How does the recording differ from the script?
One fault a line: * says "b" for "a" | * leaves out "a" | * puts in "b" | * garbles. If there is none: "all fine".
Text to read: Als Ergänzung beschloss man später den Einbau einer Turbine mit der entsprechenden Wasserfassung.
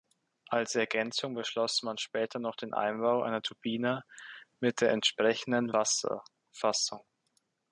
* puts in "noch"